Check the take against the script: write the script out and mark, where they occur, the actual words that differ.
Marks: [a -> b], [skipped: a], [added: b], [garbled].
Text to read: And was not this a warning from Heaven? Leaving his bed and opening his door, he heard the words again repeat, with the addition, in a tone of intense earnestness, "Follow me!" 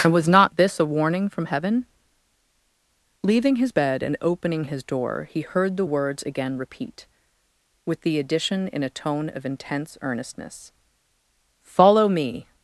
And was not this a warning from Heaven? Leaving his bed and opening his door, he heard the words again repeat, with the addition, in a tone of intense earnestness, "Follow me!"